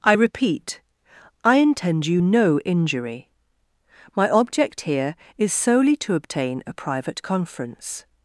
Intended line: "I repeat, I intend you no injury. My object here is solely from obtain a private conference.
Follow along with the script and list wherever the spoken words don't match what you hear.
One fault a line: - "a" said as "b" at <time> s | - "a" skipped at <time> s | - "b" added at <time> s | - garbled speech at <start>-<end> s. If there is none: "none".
- "from" said as "to" at 6.0 s